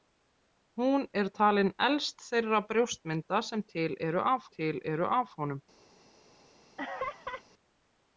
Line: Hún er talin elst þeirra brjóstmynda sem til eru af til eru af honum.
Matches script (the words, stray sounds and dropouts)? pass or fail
fail